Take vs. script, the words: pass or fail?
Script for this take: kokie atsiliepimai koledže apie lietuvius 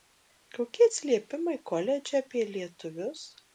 pass